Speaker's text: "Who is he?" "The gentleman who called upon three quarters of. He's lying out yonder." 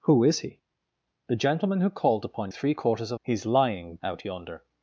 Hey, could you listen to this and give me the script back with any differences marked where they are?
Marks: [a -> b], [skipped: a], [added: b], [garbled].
"Who is he?" "The gentleman who called upon three quarters of. He's lying out yonder."